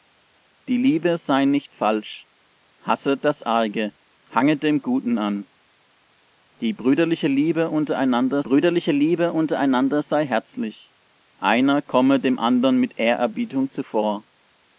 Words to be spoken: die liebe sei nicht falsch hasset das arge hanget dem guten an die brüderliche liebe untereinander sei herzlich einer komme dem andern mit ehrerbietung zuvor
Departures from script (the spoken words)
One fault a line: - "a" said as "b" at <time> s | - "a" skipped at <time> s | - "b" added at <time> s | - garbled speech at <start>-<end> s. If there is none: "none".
- "brüderliche liebe untereinander" added at 8.4 s